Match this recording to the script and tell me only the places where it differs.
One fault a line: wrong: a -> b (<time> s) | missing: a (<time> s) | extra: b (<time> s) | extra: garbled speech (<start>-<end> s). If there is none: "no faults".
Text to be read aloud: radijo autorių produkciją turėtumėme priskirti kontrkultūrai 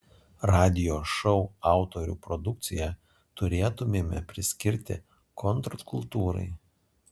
extra: šou (1.1 s)